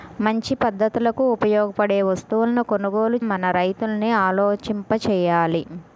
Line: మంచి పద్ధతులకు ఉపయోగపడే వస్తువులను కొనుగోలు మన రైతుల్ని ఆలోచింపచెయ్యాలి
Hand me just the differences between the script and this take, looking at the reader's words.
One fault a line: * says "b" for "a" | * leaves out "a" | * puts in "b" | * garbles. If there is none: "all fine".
all fine